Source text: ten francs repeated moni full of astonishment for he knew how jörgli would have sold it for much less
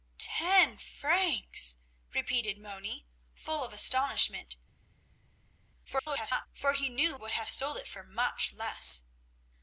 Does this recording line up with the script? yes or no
no